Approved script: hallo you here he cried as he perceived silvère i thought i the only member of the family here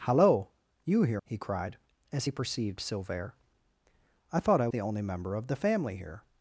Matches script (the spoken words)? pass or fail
pass